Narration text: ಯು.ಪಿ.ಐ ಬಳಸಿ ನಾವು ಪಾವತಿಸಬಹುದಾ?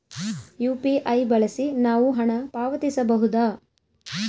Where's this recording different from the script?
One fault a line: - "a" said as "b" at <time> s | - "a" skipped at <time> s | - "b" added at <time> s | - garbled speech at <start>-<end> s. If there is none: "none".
- "ಹಣ" added at 2.1 s